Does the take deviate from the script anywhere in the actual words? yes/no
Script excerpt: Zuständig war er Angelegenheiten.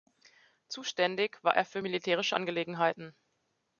yes